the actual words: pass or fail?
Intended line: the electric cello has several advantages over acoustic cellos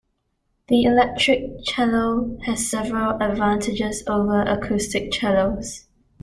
pass